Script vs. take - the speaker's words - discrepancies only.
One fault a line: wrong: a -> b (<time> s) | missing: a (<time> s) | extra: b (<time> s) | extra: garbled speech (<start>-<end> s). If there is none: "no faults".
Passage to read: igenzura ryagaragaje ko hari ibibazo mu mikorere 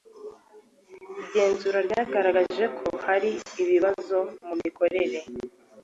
no faults